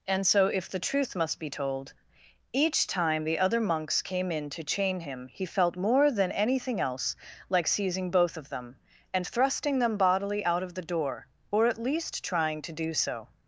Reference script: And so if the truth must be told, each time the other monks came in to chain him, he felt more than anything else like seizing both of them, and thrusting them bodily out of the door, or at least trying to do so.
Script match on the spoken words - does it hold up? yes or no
yes